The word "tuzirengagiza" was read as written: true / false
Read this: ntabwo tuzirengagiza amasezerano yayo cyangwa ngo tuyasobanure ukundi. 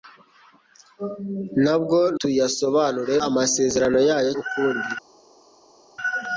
false